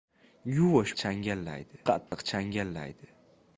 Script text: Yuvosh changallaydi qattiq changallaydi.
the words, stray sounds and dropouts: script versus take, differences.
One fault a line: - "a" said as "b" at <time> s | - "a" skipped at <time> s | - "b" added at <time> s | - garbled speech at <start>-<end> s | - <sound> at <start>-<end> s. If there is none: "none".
- dropout at 2.1-2.1 s